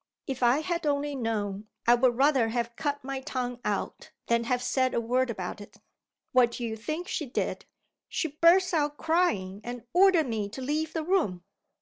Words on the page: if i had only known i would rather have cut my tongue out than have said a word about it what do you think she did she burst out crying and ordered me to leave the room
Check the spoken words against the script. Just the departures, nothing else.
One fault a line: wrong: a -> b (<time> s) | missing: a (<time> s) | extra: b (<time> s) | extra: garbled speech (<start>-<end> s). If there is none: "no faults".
no faults